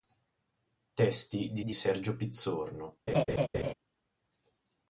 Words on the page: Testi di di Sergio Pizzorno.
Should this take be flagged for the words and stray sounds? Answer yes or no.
yes